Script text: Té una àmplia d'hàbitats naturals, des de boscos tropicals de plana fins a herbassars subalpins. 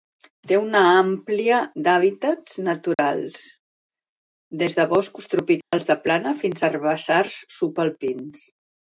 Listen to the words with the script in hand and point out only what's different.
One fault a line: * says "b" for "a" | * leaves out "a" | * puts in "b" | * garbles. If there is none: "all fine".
all fine